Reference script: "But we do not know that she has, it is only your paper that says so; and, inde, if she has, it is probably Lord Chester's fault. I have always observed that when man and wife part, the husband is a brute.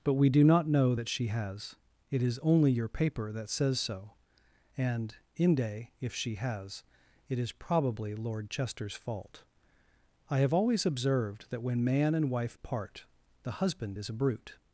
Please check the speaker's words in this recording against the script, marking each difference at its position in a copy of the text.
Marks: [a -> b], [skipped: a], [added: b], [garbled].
"But we do not know that she has, it is only your paper that says so; and, inde, if she has, it is probably Lord Chester's fault. I have always observed that when man and wife part, the husband is a brute.